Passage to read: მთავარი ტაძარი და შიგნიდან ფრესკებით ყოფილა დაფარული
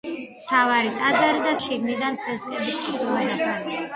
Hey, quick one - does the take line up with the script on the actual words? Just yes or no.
yes